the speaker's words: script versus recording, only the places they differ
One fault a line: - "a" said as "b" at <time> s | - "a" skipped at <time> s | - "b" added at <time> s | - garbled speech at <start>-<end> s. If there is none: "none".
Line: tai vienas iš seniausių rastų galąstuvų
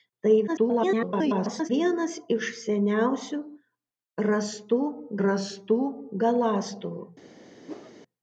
- garbled speech at 0.5-1.7 s
- "rastų" added at 5.3 s